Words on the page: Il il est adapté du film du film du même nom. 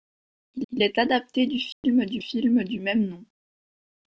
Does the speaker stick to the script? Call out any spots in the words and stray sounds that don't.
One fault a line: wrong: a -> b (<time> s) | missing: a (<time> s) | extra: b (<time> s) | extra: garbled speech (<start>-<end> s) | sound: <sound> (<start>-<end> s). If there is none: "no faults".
sound: dropout (1.7-1.8 s)